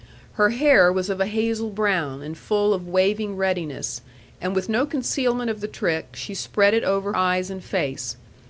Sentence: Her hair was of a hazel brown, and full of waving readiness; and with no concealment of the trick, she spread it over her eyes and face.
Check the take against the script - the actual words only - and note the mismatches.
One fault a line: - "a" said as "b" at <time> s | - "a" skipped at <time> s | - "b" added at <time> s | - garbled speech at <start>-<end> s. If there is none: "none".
- "her" skipped at 7.1 s